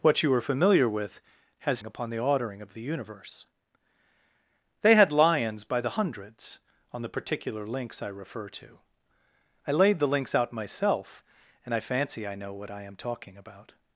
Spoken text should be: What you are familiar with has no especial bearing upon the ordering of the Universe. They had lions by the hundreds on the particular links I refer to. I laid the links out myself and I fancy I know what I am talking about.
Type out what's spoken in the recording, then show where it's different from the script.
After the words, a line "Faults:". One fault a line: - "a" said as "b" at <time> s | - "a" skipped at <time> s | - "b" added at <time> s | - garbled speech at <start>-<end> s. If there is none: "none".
What you are familiar with has upon the ordering of the Universe. They had lions by the hundreds on the particular links I refer to. I laid the links out myself and I fancy I know what I am talking about.
Faults:
- "no especial bearing" skipped at 1.8 s